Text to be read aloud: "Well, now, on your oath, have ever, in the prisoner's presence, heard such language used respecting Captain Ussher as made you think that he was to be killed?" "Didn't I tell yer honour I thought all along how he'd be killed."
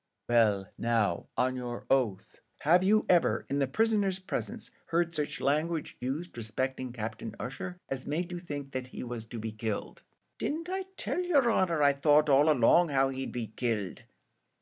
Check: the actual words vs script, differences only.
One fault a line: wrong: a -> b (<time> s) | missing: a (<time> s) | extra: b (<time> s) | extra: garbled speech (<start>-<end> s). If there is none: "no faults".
extra: you (2.8 s)